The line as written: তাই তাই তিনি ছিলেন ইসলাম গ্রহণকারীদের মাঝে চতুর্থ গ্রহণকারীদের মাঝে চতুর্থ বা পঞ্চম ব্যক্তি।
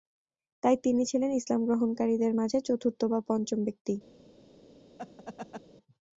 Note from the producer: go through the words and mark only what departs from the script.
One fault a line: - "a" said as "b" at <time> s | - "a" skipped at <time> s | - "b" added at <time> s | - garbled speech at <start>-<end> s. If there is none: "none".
- "তাই" skipped at 0.8 s
- "গ্রহণকারীদের মাঝে চতুর্থ" skipped at 3.0 s